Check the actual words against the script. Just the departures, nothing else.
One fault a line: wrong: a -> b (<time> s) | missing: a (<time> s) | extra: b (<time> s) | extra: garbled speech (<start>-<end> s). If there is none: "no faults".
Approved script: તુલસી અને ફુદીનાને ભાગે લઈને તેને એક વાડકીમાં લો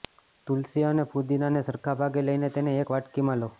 extra: સરખા (1.7 s)